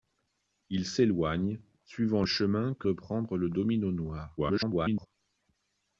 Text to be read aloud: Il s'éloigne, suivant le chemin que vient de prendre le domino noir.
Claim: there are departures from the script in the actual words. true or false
true